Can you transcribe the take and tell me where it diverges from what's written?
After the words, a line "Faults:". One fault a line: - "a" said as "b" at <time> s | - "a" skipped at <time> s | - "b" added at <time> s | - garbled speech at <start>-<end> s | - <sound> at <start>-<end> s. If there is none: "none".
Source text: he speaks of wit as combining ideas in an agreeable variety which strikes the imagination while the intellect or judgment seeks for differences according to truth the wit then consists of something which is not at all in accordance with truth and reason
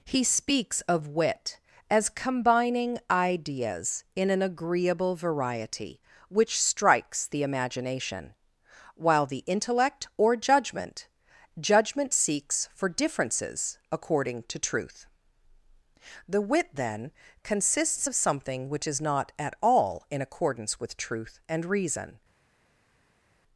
he speaks of wit as combining ideas in an agreeable variety which strikes the imagination while the intellect or judgment judgment seeks for differences according to truth the wit then consists of something which is not at all in accordance with truth and reason
Faults:
- "judgment" added at 11.6 s